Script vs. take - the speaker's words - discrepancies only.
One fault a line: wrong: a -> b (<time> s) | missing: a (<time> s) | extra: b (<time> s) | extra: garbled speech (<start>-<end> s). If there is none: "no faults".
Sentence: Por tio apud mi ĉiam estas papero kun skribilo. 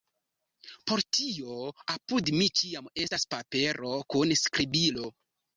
no faults